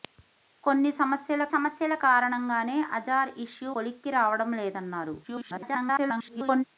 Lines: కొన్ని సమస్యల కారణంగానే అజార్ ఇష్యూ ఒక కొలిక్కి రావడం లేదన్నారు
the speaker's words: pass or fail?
fail